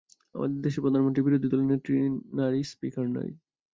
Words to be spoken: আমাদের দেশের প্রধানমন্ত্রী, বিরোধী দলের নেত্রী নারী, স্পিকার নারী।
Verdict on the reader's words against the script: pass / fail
pass